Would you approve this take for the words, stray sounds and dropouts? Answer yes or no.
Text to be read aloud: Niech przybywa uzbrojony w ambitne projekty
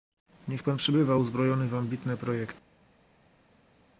no